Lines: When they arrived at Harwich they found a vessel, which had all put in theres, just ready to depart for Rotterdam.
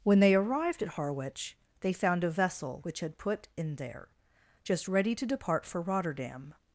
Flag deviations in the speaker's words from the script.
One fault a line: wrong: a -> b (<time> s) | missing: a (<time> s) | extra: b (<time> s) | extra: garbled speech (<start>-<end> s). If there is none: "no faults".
missing: all (3.2 s)
wrong: theres -> there (3.8 s)